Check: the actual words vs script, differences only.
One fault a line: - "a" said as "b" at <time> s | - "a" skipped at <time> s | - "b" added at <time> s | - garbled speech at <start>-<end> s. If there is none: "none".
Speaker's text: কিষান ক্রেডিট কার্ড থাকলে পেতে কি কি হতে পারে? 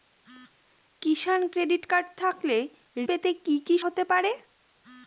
none